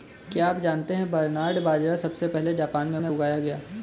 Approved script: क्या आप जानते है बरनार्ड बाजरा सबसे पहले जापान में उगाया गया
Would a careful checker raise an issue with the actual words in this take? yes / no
yes